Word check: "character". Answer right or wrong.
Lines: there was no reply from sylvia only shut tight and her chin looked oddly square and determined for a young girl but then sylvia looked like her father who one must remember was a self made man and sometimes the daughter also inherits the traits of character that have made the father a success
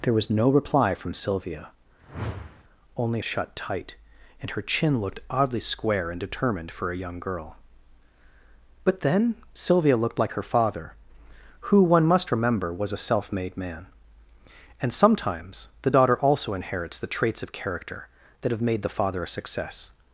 right